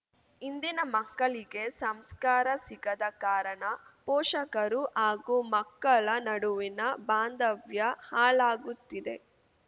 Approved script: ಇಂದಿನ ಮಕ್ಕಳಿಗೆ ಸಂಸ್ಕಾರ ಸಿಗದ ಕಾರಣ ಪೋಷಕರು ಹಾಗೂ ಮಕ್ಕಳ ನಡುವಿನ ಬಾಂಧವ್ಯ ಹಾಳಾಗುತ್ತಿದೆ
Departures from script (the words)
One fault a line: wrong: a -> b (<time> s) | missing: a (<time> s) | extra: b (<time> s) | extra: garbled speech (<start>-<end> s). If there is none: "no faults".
no faults